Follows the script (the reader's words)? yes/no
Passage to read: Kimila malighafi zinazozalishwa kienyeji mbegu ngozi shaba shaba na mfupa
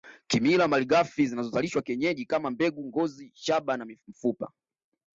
no